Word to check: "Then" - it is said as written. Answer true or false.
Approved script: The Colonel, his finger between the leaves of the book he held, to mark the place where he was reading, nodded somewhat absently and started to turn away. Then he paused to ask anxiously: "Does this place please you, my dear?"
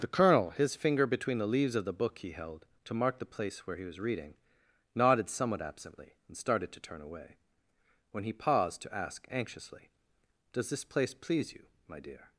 false